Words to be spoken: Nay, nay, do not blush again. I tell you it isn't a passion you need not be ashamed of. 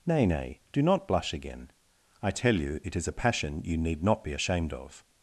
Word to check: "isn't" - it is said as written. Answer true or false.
false